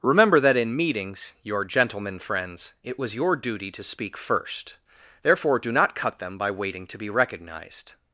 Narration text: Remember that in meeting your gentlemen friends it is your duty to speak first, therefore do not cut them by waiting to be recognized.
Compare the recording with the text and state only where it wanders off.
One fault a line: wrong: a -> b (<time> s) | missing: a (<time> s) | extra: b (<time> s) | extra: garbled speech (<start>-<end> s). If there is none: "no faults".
wrong: meeting -> meetings (0.8 s)
wrong: is -> was (3.0 s)